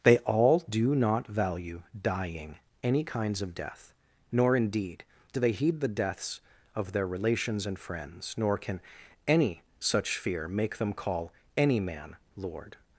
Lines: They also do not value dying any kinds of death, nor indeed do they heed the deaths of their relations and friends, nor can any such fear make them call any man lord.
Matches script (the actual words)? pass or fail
fail